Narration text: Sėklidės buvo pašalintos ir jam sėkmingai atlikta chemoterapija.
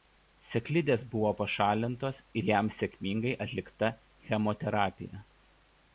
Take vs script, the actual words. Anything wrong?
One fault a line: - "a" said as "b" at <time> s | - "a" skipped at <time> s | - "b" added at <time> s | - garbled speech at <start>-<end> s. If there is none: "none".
none